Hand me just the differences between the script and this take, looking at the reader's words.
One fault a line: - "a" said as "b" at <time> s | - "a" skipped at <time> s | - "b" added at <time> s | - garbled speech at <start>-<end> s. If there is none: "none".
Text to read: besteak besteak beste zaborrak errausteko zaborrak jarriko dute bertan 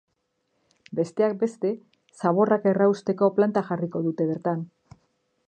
- "besteak" skipped at 1.4 s
- "zaborrak" said as "planta" at 3.4 s